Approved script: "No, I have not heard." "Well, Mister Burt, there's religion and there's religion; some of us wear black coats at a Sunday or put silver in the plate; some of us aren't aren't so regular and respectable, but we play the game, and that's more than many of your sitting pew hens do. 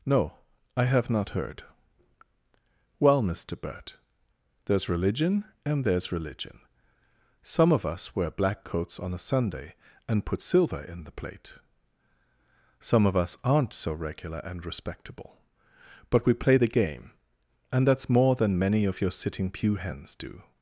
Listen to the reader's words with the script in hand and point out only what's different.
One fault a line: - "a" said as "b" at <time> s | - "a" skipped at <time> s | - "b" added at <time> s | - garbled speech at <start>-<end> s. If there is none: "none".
- "at" said as "on" at 9.0 s
- "or" said as "and" at 10.1 s
- "aren't" skipped at 13.7 s